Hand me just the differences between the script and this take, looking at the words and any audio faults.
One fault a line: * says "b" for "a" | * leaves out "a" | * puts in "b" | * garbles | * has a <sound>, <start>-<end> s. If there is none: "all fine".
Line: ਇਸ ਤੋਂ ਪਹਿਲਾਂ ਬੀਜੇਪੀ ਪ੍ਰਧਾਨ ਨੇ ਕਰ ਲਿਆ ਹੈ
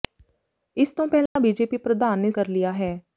* has a dropout, 1.3-1.4 s